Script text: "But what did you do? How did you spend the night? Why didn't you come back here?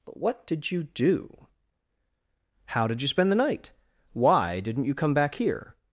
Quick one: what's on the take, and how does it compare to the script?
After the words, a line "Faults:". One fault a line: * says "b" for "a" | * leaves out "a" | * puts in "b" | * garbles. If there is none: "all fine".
"But what did you do? How did you spend the night? Why didn't you come back here?
Faults:
all fine